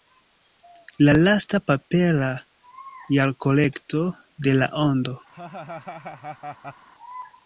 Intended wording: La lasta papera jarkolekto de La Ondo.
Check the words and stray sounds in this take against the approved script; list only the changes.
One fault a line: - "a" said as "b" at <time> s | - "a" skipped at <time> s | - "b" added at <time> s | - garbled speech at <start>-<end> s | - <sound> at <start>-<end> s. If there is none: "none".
- laugh at 5.3-6.9 s